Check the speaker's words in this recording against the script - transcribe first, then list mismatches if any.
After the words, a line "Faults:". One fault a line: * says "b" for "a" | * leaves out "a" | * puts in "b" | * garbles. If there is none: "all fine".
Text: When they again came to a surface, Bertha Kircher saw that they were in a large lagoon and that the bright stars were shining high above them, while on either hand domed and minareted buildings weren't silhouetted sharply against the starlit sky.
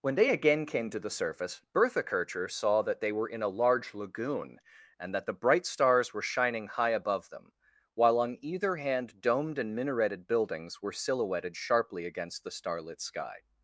When they again came to the surface, Bertha Kircher saw that they were in a large lagoon and that the bright stars were shining high above them, while on either hand domed and minareted buildings were silhouetted sharply against the starlit sky.
Faults:
* says "the" for "a"
* says "were" for "weren't"